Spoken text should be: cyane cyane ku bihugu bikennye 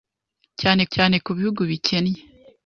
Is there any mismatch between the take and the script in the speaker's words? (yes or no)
no